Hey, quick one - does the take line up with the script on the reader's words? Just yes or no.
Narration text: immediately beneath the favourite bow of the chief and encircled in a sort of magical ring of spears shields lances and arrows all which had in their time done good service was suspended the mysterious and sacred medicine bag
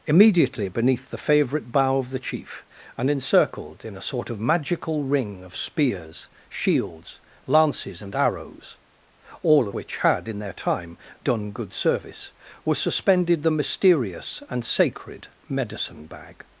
yes